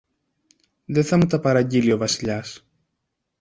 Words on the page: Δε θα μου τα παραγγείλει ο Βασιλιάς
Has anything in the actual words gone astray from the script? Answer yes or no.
no